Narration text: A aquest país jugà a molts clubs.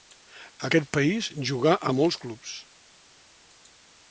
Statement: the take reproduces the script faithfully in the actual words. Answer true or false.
true